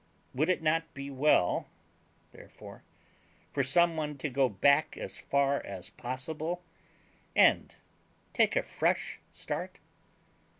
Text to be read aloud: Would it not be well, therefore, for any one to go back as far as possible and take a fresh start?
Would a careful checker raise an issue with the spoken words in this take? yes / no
yes